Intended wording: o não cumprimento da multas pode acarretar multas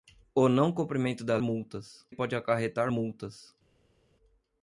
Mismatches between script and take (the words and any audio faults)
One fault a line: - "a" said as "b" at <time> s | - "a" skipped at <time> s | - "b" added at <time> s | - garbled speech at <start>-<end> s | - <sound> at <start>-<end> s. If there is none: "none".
none